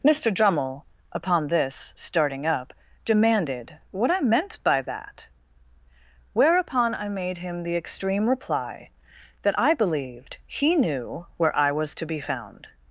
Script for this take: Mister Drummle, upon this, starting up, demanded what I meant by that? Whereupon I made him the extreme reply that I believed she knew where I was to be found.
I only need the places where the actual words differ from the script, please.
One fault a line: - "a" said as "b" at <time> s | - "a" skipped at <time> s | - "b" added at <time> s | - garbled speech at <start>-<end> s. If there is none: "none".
- "she" said as "he" at 10.4 s